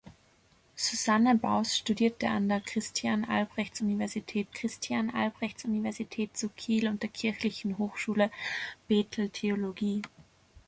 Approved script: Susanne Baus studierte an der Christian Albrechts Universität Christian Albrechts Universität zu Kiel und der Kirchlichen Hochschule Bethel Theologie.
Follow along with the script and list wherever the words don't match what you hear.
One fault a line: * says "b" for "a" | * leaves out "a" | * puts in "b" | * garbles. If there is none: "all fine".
all fine